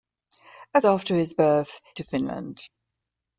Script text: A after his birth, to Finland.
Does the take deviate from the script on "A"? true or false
false